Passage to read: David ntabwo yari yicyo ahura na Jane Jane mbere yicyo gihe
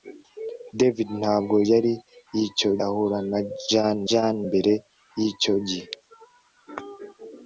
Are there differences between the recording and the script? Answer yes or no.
no